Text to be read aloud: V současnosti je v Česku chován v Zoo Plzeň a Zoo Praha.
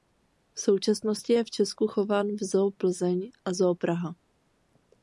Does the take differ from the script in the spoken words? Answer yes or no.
no